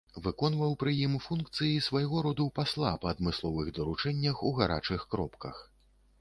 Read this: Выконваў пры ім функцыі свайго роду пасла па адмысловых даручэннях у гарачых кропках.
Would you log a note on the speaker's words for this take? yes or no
no